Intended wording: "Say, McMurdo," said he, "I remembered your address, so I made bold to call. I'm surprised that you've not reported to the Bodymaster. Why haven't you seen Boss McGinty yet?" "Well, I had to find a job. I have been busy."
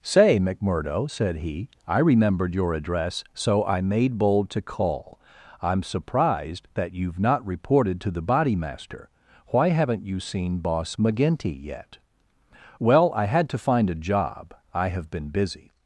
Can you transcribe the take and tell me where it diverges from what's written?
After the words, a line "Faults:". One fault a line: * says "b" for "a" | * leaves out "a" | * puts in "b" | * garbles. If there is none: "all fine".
"Say, McMurdo," said he, "I remembered your address, so I made bold to call. I'm surprised that you've not reported to the Bodymaster. Why haven't you seen Boss McGinty yet?" "Well, I had to find a job. I have been busy."
Faults:
all fine